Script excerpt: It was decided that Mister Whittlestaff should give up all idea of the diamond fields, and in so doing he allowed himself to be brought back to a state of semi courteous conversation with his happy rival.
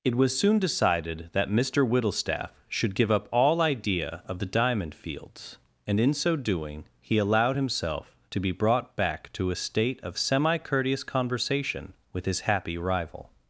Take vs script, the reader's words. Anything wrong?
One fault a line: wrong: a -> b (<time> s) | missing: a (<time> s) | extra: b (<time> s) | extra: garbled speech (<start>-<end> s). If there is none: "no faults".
extra: soon (0.4 s)